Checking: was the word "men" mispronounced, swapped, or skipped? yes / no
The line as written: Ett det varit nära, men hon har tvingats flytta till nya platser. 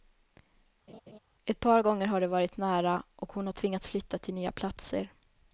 yes